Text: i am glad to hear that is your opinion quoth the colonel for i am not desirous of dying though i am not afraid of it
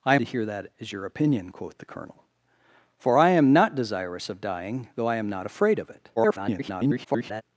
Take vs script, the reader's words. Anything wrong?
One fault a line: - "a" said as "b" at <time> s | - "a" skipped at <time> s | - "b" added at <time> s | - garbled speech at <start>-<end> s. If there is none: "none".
- "am glad" skipped at 0.1 s
- garbled speech at 6.2-7.4 s